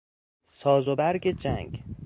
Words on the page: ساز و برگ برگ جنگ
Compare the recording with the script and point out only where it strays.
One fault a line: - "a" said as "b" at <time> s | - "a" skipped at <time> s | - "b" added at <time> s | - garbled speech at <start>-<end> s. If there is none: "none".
- "برگ" skipped at 1.3 s